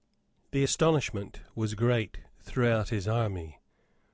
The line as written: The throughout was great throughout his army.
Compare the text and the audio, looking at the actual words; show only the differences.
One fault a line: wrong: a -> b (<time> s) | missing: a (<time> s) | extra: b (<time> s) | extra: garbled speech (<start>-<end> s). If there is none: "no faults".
wrong: throughout -> astonishment (0.6 s)